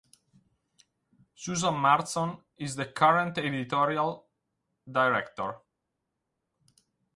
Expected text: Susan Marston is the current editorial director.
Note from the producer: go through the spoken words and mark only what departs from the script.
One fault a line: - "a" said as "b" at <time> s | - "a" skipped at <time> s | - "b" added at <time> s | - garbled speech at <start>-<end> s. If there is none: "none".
none